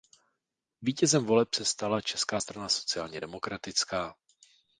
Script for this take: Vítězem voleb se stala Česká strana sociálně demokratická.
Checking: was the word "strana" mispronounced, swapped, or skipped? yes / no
no